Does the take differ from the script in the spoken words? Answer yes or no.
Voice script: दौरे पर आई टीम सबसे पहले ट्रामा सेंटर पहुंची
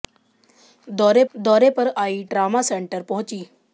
yes